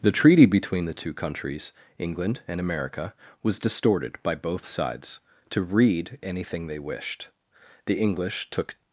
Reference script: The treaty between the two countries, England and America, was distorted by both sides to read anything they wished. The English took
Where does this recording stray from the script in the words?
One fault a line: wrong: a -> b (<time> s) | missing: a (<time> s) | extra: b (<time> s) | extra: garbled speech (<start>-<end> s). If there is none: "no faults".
no faults